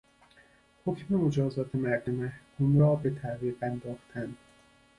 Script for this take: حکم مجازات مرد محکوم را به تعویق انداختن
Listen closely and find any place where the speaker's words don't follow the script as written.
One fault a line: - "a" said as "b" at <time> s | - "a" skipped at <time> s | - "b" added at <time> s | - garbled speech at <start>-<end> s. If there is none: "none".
none